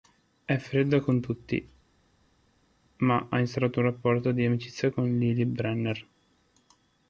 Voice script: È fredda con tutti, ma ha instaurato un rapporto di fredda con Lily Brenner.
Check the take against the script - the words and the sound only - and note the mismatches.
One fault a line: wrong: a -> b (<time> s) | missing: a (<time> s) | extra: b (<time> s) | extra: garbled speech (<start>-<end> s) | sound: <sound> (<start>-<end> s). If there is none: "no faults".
wrong: fredda -> amicizia (4.4 s)